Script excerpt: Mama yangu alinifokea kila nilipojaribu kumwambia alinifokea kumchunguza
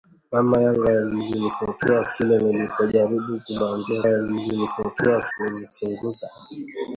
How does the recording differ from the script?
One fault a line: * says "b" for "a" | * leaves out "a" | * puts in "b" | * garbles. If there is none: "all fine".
all fine